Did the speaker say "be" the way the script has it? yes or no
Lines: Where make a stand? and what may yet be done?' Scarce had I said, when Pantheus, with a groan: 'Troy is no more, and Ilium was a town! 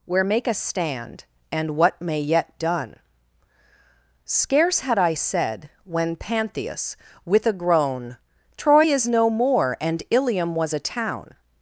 no